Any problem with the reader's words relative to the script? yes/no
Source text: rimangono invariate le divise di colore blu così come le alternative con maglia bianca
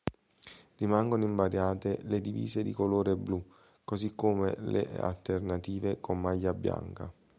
no